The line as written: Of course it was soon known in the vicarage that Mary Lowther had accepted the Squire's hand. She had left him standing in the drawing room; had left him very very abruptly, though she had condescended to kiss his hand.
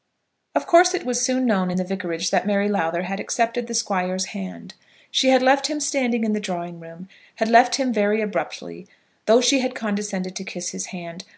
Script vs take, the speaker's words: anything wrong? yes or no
yes